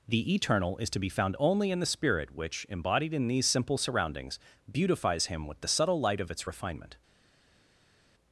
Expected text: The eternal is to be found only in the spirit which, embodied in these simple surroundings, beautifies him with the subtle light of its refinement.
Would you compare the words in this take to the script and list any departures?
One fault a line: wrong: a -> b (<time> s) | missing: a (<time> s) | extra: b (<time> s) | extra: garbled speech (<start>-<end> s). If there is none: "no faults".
no faults